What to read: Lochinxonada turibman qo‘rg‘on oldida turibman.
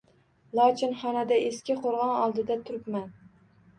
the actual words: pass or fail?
fail